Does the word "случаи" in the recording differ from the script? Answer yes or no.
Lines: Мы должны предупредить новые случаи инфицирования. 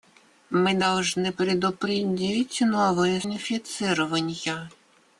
yes